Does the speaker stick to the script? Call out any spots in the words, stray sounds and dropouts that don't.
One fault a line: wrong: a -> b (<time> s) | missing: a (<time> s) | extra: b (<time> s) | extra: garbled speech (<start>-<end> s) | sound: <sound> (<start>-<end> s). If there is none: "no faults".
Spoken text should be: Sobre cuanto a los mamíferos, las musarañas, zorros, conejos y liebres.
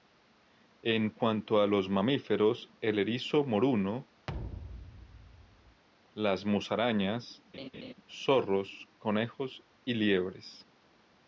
wrong: Sobre -> En (0.8 s)
extra: el erizo moruno (2.8 s)
sound: thud (4.3-5.8 s)
sound: laugh (7.5-7.9 s)